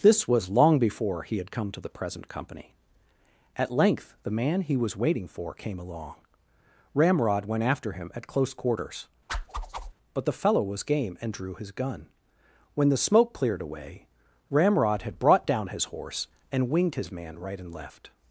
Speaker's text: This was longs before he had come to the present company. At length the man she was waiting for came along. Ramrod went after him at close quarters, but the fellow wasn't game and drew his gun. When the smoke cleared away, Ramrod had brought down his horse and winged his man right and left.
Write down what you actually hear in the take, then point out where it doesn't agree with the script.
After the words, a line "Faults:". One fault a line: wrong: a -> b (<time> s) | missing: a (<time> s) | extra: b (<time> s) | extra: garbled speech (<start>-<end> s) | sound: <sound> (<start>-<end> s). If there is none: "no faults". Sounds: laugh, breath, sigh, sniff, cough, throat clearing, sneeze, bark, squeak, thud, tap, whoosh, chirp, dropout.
This was long before he had come to the present company. At length the man he was waiting for came along. Ramrod went after him at close quarters, but the fellow was game and drew his gun. When the smoke cleared away, Ramrod had brought down his horse and winged his man right and left.
Faults:
wrong: longs -> long (0.5 s)
wrong: she -> he (4.6 s)
sound: whoosh (9.3-9.9 s)
wrong: wasn't -> was (10.6 s)